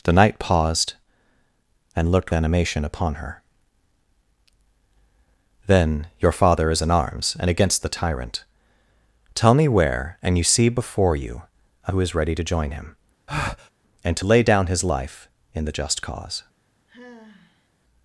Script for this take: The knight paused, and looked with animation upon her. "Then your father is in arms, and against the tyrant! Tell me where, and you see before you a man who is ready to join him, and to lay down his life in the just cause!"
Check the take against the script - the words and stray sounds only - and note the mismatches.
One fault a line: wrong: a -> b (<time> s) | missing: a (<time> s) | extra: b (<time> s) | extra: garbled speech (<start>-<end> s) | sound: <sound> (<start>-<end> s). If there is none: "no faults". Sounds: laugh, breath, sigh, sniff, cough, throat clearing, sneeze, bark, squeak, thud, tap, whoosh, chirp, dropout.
missing: with (2.3 s)
missing: man (11.9 s)
sound: breath (13.3-13.7 s)
sound: sigh (16.9-17.7 s)